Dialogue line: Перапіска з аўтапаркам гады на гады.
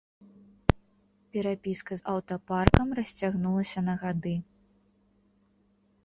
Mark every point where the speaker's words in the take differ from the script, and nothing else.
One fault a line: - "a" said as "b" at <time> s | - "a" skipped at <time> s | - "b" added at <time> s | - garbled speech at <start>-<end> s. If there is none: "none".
- "гады" said as "расцягнулася" at 3.0 s